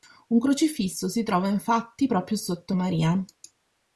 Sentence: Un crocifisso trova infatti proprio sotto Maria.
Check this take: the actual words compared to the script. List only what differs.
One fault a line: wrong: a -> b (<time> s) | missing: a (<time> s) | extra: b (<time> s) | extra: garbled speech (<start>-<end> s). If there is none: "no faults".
extra: si (1.1 s)